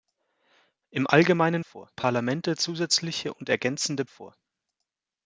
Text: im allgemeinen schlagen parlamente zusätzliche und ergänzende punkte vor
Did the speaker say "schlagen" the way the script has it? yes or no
no